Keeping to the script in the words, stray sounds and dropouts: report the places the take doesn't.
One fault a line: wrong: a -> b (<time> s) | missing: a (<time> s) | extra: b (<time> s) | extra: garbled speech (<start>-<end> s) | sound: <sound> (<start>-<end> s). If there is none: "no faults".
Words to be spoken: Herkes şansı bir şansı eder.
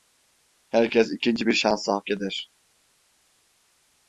wrong: şansı -> ikinci (1.1 s)
extra: hak (1.9 s)